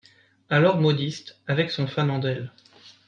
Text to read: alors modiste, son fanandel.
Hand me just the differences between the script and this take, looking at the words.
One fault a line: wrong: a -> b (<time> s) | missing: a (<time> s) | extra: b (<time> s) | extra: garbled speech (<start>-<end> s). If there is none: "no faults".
extra: avec (1.4 s)